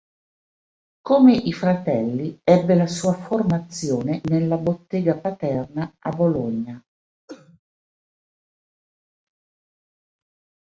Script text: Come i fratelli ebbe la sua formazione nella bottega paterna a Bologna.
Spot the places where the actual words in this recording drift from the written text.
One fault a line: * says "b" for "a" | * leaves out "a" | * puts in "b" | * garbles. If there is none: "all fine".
all fine